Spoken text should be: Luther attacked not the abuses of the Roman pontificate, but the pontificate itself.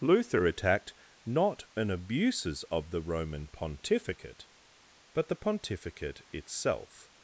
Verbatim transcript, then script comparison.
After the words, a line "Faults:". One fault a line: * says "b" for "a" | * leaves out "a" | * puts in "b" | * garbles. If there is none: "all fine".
Luther attacked not an abuses of the Roman pontificate, but the pontificate itself.
Faults:
* says "an" for "the"